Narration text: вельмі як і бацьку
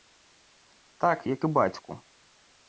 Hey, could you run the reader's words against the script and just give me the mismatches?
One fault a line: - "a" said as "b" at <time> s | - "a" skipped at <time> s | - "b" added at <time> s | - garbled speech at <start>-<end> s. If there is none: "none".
- "вельмі" said as "так" at 1.0 s